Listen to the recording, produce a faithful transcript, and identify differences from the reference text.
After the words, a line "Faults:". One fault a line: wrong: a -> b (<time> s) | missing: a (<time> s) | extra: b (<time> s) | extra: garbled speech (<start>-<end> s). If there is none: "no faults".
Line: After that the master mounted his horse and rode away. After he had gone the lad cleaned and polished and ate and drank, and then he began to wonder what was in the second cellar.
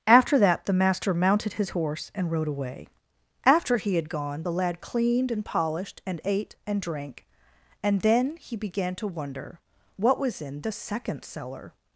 After that the master mounted his horse and rode away. After he had gone the lad cleaned and polished and ate and drank, and then he began to wonder what was in the second cellar.
Faults:
no faults